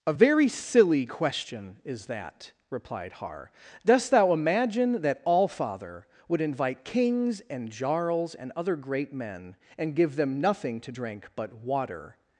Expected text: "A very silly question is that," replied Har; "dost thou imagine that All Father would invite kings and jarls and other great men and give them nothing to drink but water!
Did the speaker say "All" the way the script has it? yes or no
yes